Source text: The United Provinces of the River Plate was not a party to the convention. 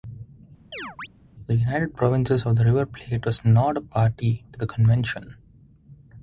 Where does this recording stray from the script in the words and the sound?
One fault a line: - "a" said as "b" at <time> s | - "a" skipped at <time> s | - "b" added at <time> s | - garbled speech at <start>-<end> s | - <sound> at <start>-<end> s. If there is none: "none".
- chirp at 0.7-1.1 s